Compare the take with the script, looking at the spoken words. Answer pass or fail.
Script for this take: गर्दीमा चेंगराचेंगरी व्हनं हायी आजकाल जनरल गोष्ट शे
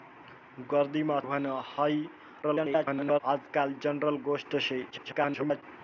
fail